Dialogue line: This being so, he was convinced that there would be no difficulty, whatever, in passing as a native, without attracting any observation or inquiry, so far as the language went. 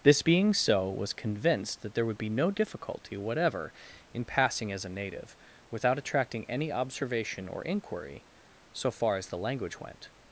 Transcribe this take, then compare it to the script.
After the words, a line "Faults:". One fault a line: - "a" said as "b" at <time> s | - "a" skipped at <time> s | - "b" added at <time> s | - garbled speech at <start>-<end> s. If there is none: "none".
This being so, was convinced that there would be no difficulty, whatever, in passing as a native, without attracting any observation or inquiry, so far as the language went.
Faults:
- "he" skipped at 0.9 s